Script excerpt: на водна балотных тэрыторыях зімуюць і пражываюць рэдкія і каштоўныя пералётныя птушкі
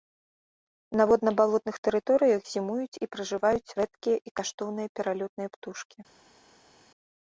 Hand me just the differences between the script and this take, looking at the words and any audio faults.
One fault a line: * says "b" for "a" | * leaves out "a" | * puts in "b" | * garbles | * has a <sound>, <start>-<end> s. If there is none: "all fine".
all fine